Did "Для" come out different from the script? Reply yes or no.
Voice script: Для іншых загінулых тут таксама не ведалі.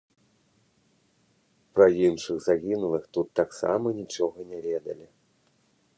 yes